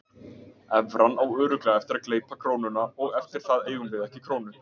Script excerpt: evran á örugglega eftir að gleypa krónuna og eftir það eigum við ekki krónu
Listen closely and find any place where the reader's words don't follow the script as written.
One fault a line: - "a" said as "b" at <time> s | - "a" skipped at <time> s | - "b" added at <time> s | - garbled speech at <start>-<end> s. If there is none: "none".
none